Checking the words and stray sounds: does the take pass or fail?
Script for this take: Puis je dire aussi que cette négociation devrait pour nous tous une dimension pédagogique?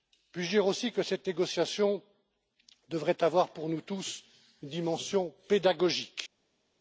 fail